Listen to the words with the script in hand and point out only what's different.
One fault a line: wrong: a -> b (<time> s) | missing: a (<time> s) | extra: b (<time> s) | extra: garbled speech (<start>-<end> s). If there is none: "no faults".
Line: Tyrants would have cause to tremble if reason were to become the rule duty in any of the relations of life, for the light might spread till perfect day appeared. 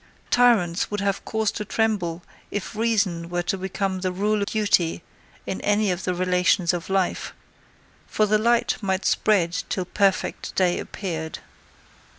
no faults